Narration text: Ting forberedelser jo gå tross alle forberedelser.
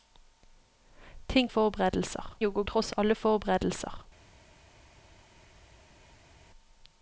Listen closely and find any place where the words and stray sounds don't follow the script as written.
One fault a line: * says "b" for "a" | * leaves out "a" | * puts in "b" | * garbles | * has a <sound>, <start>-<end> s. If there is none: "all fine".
all fine